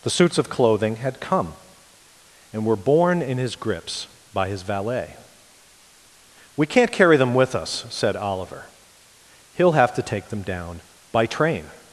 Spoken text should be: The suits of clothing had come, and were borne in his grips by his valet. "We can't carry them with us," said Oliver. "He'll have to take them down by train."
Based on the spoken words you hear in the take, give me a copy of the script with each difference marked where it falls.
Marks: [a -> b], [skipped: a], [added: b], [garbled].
The suits of clothing had come, and were borne in his grips by his valet. "We can't carry them with us," said Oliver. "He'll have to take them down by train."